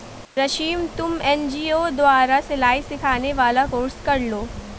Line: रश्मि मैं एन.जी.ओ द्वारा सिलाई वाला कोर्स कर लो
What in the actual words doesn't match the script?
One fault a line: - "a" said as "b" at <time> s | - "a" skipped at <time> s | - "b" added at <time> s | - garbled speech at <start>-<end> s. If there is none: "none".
- "मैं" said as "तुम" at 1.0 s
- "सिखाने" added at 2.8 s